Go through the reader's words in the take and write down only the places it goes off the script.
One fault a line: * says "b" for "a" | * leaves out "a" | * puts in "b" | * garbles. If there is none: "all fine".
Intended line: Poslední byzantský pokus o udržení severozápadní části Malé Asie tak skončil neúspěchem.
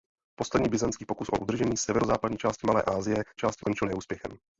* says "části" for "tak"